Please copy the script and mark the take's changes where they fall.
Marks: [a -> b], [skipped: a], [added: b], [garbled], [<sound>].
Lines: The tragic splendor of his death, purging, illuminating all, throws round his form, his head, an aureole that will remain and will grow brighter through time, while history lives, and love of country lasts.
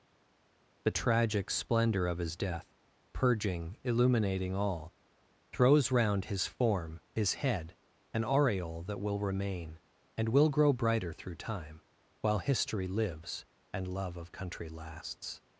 The tragic splendor of his death, purging, illuminating all, throws round his form, his head, an aureole that will remain and will grow brighter through time, while history lives, and love of country lasts.